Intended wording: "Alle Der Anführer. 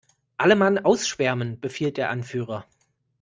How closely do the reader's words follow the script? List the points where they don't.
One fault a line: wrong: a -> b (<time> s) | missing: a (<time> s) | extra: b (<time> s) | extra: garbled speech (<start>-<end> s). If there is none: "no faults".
extra: Mann ausschwärmen befiehlt (0.6 s)